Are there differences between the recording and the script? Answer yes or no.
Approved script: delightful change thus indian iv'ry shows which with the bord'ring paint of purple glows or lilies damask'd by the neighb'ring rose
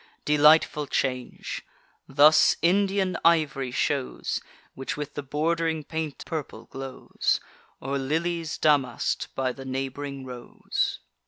yes